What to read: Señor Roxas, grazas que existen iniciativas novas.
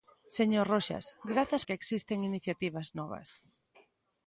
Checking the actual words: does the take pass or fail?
pass